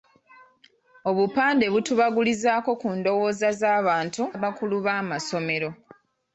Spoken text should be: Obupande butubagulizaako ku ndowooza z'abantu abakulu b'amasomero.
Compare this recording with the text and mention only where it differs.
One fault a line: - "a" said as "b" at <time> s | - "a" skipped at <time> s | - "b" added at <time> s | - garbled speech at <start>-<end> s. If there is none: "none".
none